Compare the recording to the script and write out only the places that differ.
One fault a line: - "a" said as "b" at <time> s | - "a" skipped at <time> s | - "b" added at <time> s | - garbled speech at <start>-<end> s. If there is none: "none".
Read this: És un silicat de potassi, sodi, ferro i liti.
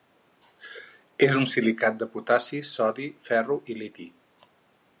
none